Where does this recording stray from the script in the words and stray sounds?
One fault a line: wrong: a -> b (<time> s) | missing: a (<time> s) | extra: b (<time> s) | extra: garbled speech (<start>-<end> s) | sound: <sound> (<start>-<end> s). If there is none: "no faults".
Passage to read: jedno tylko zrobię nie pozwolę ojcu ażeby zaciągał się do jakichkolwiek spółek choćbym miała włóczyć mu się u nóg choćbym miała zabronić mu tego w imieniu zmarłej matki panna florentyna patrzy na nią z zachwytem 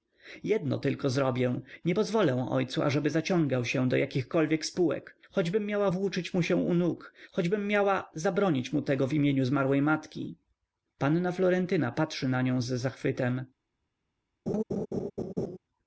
sound: laugh (14.5-15.6 s)